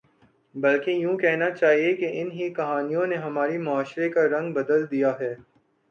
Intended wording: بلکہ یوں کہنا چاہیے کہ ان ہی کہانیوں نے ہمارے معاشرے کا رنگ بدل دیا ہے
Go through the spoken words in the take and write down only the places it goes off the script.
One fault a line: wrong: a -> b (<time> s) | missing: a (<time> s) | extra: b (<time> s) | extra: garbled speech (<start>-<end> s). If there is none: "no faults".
no faults